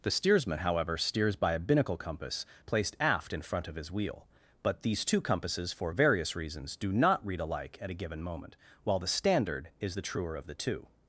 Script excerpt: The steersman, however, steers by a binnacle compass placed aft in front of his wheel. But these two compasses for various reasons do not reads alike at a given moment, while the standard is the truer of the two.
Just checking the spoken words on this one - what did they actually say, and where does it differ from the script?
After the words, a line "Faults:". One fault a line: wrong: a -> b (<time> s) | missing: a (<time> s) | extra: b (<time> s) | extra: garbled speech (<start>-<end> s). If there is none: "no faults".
The steersman, however, steers by a binnacle compass placed aft in front of his wheel. But these two compasses for various reasons do not read alike at a given moment, while the standard is the truer of the two.
Faults:
wrong: reads -> read (7.3 s)